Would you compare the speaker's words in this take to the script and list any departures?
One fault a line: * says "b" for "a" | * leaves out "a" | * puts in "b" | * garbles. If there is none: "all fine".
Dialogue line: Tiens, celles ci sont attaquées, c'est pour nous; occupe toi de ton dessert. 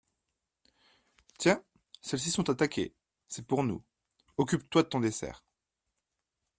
all fine